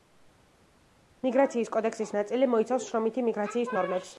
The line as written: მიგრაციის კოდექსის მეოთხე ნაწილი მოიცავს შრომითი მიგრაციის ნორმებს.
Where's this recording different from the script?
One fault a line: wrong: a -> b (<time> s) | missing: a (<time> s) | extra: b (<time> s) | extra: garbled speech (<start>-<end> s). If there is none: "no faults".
missing: მეოთხე (2.1 s)